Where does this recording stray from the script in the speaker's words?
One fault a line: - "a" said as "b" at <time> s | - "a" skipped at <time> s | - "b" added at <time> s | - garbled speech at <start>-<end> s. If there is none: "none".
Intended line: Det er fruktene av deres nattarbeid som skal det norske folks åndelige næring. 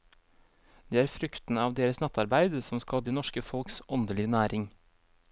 none